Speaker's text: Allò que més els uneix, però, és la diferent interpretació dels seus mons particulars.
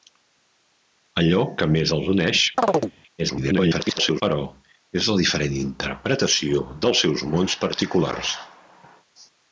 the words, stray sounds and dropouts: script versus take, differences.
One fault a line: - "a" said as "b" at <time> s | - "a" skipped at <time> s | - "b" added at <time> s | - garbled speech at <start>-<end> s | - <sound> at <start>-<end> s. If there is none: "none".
- chirp at 2.6-2.9 s
- garbled speech at 3.2-4.2 s